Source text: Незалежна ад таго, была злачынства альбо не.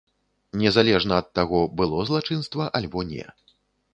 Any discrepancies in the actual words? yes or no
yes